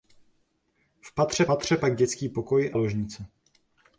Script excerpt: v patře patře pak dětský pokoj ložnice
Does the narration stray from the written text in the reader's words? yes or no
no